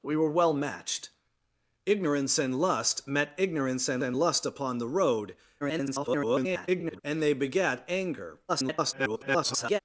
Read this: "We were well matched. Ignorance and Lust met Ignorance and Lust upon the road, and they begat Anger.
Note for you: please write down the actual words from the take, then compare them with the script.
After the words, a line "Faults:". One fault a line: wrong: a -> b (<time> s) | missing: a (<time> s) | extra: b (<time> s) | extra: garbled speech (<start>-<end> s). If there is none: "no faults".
"We were well matched. Ignorance and Lust met Ignorance and and Lust upon the road, [garbled] and they begat Anger. [garbled]
Faults:
extra: and (4.0 s)
extra: garbled speech (5.6-7.0 s)
extra: garbled speech (8.5-9.8 s)